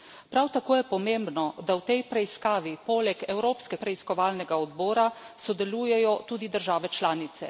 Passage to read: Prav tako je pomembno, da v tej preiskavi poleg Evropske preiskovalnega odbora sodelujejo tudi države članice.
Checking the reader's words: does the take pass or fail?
pass